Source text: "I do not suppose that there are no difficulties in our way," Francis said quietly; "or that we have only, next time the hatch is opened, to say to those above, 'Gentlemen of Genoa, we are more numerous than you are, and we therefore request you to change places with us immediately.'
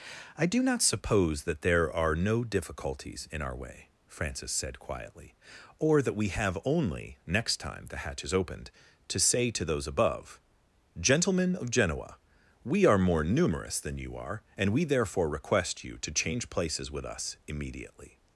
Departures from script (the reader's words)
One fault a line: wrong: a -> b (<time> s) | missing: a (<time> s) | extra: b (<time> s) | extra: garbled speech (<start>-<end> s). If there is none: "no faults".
no faults